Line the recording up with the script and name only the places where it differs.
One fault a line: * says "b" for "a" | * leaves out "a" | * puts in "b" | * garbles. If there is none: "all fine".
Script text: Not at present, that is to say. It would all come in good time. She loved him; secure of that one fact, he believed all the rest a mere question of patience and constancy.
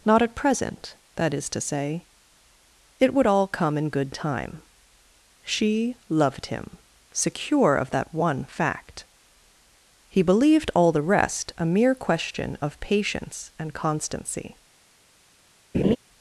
all fine